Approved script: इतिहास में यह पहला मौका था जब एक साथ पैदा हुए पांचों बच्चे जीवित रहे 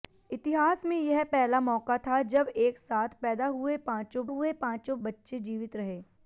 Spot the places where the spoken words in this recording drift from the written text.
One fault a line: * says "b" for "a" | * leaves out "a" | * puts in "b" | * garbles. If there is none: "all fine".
* puts in "हुए पांचों"